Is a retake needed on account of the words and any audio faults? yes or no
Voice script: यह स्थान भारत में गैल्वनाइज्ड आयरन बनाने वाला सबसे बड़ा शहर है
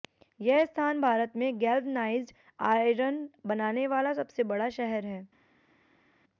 no